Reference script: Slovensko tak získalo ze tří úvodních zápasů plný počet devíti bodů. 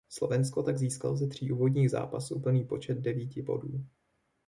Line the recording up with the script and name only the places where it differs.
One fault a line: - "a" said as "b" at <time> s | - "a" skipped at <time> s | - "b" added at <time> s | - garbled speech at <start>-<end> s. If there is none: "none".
none